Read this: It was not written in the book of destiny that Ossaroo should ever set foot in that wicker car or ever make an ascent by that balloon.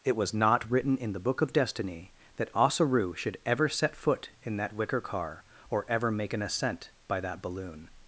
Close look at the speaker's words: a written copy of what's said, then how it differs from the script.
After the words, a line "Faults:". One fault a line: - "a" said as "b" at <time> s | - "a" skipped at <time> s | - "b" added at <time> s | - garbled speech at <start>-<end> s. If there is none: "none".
It was not written in the book of destiny that Ossaroo should ever set foot in that wicker car or ever make an ascent by that balloon.
Faults:
none